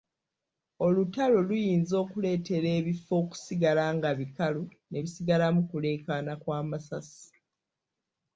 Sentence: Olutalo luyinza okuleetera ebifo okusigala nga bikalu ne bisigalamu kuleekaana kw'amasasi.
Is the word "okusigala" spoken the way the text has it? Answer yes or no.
yes